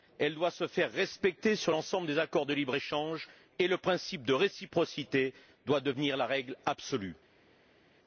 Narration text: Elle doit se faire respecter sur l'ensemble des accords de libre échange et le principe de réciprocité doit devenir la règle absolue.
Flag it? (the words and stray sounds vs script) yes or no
no